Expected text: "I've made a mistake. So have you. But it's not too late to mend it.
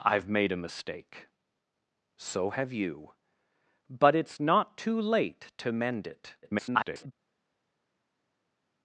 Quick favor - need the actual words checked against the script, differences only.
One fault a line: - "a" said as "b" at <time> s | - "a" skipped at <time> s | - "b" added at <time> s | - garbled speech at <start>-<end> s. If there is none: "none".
- garbled speech at 6.4-7.1 s